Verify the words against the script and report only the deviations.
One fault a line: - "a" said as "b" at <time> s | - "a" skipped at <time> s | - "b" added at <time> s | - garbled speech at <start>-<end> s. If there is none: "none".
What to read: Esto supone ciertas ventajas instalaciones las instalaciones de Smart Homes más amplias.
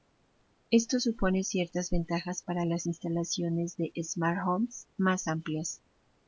- "instalaciones" said as "para" at 2.4 s